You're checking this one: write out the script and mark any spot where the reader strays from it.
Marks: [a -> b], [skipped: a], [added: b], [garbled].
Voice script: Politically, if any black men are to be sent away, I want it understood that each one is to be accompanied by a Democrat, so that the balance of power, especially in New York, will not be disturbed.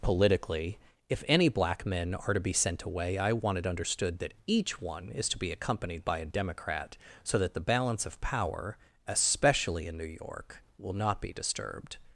Politically, if any black men are to be sent away, I want it understood that each one is to be accompanied by a Democrat, so that the balance of power, especially in New York, will not be disturbed.